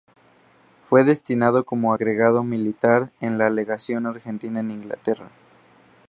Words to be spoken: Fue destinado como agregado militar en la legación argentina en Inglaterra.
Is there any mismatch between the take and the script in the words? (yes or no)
no